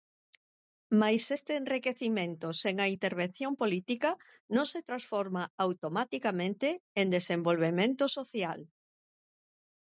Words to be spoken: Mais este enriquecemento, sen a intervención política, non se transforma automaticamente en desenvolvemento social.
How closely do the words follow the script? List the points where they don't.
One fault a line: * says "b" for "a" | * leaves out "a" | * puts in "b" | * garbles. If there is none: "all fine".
all fine